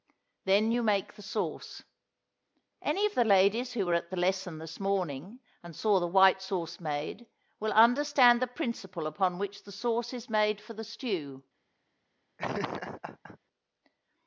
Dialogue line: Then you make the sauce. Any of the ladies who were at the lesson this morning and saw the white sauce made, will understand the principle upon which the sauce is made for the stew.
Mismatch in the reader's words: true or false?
false